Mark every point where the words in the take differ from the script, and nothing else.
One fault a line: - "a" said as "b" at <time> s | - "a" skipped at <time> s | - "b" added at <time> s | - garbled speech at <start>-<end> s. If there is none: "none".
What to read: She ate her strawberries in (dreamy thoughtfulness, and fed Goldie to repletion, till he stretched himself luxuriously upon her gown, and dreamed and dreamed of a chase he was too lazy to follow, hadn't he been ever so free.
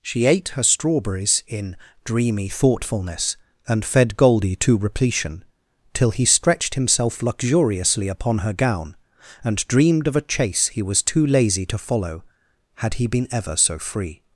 - "and dreamed" skipped at 10.1 s
- "hadn't" said as "had" at 12.8 s